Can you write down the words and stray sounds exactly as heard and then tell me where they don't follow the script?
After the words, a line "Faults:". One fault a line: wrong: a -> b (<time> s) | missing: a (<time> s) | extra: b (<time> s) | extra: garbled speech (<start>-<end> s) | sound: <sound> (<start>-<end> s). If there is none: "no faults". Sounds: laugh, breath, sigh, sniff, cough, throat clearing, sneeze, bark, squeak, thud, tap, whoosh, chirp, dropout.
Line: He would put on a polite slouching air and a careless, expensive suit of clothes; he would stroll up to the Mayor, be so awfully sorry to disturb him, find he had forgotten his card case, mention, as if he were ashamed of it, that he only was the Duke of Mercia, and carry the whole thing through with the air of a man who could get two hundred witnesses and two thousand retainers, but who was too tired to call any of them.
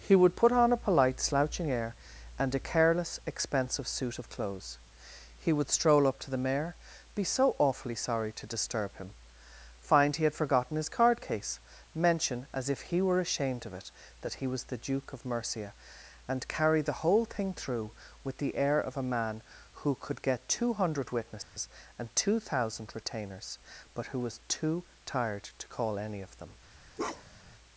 He would put on a polite slouching air and a careless, expensive suit of clothes; he would stroll up to the Mayor, be so awfully sorry to disturb him, find he had forgotten his card case, mention, as if he were ashamed of it, that he was the Duke of Mercia, and carry the whole thing through with the air of a man who could get two hundred witnesses and two thousand retainers, but who was too tired to call any of them.
Faults:
missing: only (14.5 s)
sound: dropout (21.4-21.6 s)
sound: bark (27.0-27.6 s)